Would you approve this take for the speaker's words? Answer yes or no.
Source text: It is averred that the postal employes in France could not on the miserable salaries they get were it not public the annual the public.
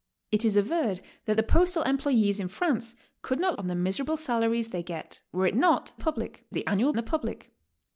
yes